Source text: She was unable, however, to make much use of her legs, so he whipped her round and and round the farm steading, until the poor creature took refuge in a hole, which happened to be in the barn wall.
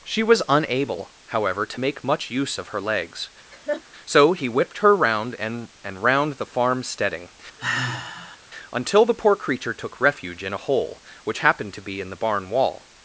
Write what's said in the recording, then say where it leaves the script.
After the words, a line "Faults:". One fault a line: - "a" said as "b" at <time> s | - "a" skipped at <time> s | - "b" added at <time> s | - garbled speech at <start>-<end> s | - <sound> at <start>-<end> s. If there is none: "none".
She was unable, however, to make much use of her legs, so he whipped her round and and round the farm steading, until the poor creature took refuge in a hole, which happened to be in the barn wall.
Faults:
- laugh at 3.5-3.8 s
- sigh at 7.6-8.4 s